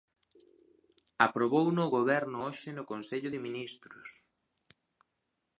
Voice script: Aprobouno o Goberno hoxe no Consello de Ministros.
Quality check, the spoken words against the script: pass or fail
pass